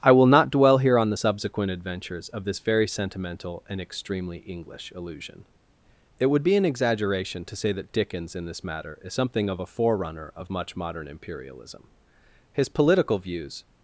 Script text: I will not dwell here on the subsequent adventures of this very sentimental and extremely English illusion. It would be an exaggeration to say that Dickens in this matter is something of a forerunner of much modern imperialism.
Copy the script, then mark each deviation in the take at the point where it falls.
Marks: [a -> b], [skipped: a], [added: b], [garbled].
I will not dwell here on the subsequent adventures of this very sentimental and extremely English illusion. It would be an exaggeration to say that Dickens in this matter is something of a forerunner of much modern imperialism. [added: His political views]